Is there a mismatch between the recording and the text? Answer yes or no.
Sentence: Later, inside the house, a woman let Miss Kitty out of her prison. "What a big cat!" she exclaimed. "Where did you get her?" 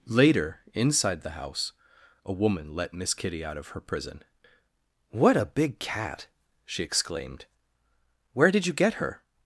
no